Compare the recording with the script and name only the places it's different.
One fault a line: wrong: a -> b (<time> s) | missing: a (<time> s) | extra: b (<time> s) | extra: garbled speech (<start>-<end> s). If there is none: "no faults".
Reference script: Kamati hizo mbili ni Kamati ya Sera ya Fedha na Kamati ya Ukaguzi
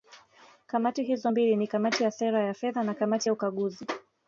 no faults